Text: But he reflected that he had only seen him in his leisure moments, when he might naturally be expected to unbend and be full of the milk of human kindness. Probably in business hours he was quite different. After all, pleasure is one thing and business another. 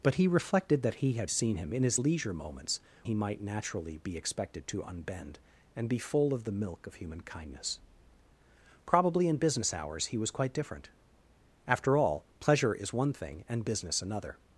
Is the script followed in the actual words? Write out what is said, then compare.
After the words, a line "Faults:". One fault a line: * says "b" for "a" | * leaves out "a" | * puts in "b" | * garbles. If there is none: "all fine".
But he reflected that he had seen him in his leisure moments, he might naturally be expected to unbend and be full of the milk of human kindness. Probably in business hours he was quite different. After all, pleasure is one thing and business another.
Faults:
* leaves out "only"
* leaves out "when"